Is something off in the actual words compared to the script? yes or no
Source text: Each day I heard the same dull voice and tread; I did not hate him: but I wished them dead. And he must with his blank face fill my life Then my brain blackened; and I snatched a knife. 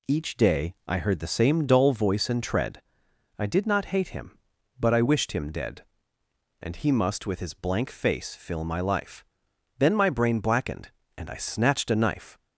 yes